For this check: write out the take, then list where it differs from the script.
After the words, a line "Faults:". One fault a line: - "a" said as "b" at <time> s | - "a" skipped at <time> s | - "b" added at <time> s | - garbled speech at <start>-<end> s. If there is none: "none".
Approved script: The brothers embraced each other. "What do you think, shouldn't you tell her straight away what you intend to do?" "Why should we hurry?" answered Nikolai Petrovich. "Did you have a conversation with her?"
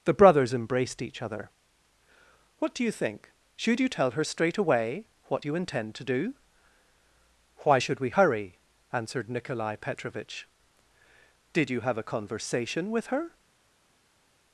The brothers embraced each other. "What do you think, should you tell her straight away what you intend to do?" "Why should we hurry?" answered Nikolai Petrovich. "Did you have a conversation with her?"
Faults:
- "shouldn't" said as "should" at 3.5 s